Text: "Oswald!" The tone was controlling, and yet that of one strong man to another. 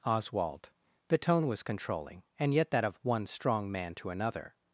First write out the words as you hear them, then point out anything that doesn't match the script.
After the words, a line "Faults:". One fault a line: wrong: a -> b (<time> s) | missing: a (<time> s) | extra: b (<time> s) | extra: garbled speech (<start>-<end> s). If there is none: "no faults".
"Oswald!" The tone was controlling, and yet that of one strong man to another.
Faults:
no faults